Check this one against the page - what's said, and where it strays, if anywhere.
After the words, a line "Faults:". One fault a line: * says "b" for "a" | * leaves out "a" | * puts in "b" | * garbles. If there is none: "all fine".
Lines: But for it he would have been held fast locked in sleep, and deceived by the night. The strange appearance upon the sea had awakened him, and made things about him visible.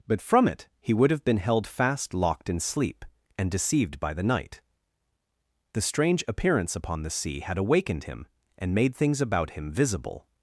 But from it he would have been held fast locked in sleep, and deceived by the night. The strange appearance upon the sea had awakened him, and made things about him visible.
Faults:
* says "from" for "for"